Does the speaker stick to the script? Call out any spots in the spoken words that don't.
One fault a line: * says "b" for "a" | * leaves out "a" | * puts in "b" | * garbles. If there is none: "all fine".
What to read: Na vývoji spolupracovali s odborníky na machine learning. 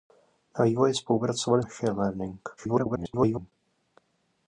* leaves out "s odborníky na"
* garbles